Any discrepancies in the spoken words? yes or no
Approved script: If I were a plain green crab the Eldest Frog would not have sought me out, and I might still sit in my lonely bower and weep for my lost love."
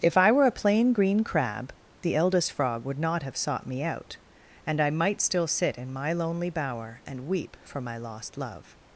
no